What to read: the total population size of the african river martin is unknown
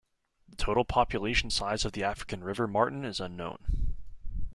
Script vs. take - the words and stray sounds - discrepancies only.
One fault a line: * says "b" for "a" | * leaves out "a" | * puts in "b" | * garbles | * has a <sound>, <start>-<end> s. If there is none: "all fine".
all fine